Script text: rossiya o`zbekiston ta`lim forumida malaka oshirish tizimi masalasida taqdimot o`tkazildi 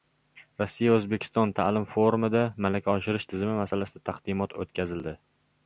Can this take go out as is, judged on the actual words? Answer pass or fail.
pass